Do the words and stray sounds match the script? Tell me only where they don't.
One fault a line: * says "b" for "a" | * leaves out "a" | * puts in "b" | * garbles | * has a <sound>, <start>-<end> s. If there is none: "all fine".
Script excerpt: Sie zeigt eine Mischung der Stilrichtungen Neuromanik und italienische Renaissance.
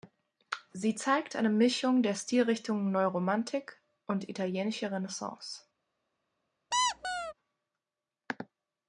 * has a squeak, 6.7-7.3 s